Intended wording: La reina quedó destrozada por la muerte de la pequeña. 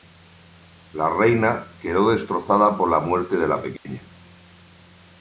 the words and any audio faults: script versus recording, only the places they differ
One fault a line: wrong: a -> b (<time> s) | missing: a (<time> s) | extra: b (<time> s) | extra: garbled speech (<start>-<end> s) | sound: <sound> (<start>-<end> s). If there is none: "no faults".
sound: dropout (3.8-3.9 s)